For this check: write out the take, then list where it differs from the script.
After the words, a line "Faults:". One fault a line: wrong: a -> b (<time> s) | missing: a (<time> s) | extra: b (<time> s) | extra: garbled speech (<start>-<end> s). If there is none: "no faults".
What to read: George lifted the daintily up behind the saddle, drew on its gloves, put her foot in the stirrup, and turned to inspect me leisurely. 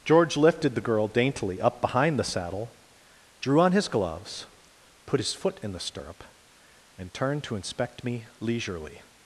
George lifted the girl daintily up behind the saddle, drew on his gloves, put his foot in the stirrup, and turned to inspect me leisurely.
Faults:
extra: girl (0.8 s)
wrong: its -> his (3.7 s)
wrong: her -> his (5.2 s)